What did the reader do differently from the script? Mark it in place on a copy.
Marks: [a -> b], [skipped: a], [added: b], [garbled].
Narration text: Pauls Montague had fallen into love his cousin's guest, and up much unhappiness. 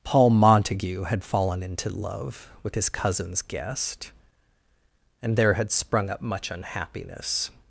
[Pauls -> Paul] Montague had fallen into love [added: with] his cousin's guest, and [added: there had sprung] up much unhappiness.